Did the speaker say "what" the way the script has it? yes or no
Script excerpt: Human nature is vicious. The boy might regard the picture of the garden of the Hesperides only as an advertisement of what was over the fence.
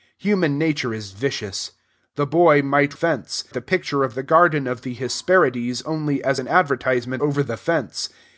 no